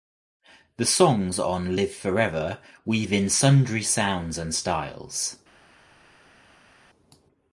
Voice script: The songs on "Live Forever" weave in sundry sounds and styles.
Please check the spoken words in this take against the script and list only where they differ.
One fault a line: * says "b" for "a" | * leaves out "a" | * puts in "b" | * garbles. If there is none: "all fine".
all fine